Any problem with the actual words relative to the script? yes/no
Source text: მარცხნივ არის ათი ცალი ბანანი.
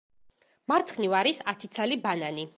no